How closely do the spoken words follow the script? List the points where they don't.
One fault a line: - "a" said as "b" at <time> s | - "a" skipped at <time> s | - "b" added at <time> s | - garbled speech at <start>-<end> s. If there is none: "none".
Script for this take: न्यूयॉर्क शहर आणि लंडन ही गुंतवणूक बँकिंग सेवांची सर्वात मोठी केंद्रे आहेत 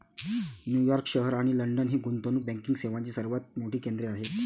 none